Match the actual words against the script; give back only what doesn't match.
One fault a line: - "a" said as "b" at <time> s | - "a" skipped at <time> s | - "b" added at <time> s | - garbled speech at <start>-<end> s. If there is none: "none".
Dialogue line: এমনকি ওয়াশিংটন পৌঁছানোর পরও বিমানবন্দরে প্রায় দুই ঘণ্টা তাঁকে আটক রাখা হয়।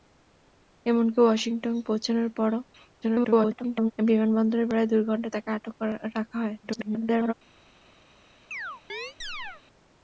- garbled speech at 3.0-3.9 s
- garbled speech at 6.6-7.3 s